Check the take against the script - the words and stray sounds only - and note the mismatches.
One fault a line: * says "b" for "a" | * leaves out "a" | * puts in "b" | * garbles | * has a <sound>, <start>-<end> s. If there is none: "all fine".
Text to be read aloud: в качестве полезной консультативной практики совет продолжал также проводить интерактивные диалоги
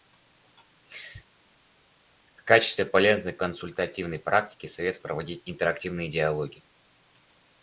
* leaves out "продолжал также"